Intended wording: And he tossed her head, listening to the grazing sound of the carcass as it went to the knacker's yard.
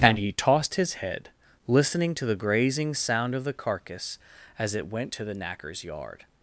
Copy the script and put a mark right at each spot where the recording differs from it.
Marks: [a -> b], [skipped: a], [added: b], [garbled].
And he tossed [her -> his] head, listening to the grazing sound of the carcass as it went to the knacker's yard.